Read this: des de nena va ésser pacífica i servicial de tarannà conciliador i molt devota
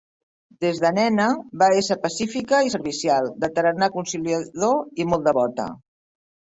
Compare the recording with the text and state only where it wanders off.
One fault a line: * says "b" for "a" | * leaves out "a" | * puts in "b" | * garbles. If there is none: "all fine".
all fine